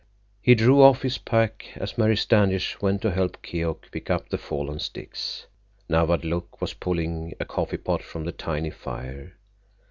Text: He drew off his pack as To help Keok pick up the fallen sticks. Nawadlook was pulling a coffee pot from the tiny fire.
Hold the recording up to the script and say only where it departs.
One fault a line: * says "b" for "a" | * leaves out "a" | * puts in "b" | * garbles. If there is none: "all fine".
* puts in "Mary Standish went"